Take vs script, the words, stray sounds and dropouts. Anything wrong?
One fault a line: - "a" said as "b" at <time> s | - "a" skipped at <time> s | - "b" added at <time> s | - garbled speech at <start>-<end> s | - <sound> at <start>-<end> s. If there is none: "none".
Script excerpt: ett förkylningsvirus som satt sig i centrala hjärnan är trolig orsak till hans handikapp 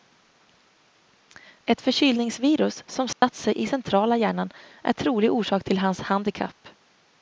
- dropout at 3.1-3.2 s